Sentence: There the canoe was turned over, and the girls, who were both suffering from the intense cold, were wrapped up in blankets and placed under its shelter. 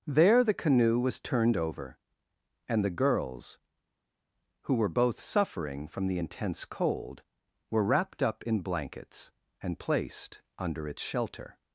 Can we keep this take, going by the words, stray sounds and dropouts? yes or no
yes